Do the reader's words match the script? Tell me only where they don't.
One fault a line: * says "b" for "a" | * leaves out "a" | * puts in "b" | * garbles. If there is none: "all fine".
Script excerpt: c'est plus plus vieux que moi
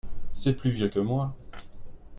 * leaves out "plus"